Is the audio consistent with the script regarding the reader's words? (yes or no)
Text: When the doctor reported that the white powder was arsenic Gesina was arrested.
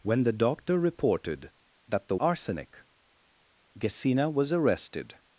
no